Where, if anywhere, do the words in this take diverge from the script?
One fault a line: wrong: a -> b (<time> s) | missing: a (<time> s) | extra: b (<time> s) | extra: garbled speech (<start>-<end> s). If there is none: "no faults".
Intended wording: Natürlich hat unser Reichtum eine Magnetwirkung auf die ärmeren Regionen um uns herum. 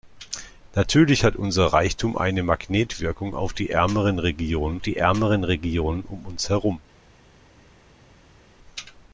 extra: die ärmeren Regionen (4.8 s)